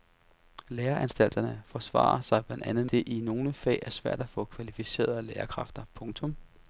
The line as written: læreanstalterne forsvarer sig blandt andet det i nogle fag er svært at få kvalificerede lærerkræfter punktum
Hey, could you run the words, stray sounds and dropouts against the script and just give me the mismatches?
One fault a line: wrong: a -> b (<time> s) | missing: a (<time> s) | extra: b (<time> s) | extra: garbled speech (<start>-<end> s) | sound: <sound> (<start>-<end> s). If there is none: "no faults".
no faults